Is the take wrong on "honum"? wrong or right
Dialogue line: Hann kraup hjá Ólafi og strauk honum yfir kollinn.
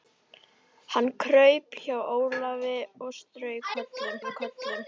wrong